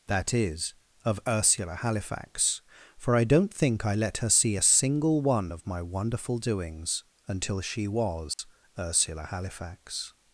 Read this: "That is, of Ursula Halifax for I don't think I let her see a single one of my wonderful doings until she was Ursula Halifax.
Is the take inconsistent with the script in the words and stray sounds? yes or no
yes